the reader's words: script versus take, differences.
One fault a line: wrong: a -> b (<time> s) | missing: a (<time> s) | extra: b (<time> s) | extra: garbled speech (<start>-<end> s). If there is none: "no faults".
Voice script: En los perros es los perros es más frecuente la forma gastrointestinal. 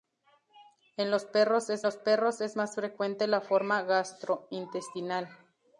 no faults